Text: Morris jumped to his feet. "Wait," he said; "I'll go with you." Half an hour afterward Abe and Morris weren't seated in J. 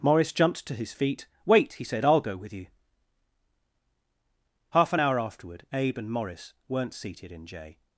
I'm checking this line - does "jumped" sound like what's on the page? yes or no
yes